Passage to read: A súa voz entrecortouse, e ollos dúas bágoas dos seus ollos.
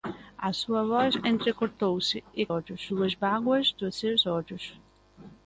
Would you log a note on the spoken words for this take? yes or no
no